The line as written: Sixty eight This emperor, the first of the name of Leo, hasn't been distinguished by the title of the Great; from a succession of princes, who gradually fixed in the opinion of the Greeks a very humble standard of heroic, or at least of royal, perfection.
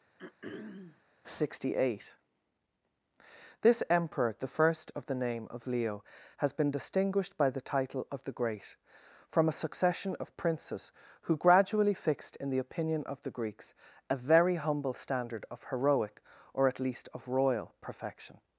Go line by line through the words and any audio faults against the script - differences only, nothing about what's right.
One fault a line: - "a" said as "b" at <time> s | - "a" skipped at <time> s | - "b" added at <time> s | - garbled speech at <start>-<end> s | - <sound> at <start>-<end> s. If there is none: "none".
- throat clearing at 0.2-1.0 s
- "hasn't" said as "has" at 6.4 s